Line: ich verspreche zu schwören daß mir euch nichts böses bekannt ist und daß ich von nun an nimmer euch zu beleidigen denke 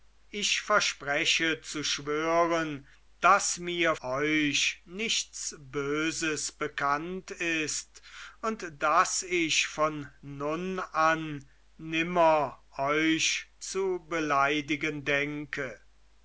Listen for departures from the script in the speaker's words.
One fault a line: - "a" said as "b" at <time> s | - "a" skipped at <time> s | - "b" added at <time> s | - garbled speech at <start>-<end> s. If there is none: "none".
none